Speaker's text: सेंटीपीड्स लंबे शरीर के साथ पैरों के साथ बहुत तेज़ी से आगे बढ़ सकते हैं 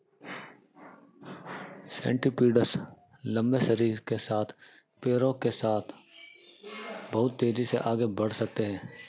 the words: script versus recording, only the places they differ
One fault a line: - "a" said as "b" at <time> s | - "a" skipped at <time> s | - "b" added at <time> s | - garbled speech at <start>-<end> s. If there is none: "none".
none